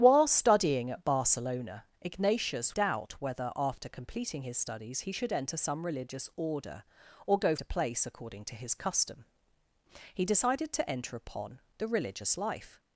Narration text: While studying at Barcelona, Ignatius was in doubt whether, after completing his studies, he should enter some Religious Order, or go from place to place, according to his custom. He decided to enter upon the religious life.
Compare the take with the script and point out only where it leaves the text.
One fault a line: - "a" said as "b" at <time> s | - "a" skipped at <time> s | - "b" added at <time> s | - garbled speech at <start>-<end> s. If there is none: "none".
- "was in" skipped at 2.7 s
- "from place" skipped at 7.5 s